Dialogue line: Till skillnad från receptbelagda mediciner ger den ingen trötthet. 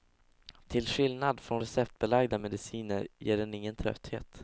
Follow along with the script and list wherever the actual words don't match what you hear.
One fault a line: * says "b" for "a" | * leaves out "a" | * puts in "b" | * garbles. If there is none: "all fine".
all fine